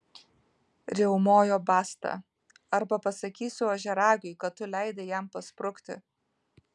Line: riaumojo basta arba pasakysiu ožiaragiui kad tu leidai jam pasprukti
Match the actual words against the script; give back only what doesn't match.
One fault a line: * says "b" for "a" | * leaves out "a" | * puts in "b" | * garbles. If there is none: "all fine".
all fine